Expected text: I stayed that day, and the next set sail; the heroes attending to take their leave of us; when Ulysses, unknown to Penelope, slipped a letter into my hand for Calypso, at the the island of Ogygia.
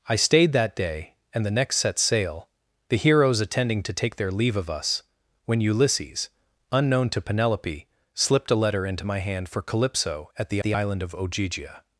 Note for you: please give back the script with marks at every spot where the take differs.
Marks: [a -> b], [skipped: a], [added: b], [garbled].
I stayed that day, and the next set sail; the heroes attending to take their leave of us; when Ulysses, unknown to Penelope, slipped a letter into my hand for Calypso, at the the island of Ogygia.